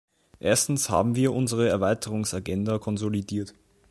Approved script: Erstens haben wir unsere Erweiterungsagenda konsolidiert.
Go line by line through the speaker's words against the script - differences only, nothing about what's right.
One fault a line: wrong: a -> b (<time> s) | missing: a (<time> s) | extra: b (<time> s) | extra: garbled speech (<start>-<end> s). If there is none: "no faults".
no faults